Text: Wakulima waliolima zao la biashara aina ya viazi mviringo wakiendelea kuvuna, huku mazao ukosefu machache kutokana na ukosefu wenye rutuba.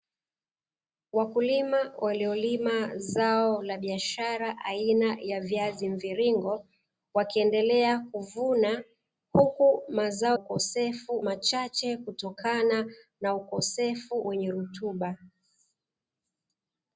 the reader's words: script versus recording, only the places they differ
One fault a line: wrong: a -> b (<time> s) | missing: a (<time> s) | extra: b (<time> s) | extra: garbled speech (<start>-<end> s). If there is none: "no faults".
no faults